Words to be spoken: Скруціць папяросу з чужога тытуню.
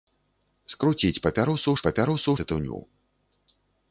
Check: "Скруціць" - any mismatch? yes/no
no